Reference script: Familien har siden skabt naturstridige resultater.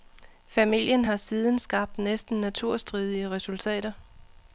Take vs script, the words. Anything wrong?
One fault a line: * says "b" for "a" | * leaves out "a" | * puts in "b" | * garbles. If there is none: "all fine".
* puts in "næsten"